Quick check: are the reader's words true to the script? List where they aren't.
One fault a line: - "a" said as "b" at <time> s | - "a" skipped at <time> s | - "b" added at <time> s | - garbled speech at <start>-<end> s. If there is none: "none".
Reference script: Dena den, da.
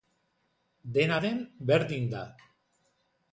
- "berdin" added at 1.6 s